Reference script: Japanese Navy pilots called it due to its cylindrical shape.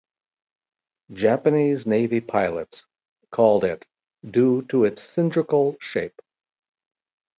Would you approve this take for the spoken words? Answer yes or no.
yes